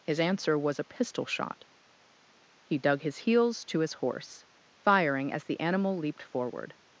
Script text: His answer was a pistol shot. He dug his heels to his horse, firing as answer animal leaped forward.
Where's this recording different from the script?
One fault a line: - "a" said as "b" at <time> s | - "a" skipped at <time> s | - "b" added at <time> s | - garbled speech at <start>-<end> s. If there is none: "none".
- "answer" said as "the" at 5.4 s